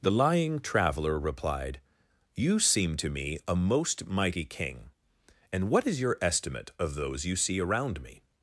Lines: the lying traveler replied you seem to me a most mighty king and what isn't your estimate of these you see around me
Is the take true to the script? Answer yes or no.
no